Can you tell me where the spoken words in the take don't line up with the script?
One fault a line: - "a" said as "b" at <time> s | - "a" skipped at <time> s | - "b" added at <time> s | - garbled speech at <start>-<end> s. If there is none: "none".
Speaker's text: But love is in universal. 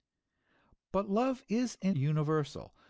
none